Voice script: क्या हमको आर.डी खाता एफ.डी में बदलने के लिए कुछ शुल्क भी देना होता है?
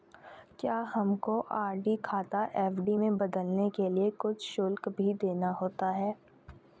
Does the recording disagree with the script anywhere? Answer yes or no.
no